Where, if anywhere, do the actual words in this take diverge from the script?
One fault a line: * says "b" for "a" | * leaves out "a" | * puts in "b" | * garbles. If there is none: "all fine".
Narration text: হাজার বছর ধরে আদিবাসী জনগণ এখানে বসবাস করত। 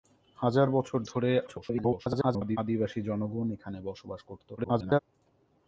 * garbles
* garbles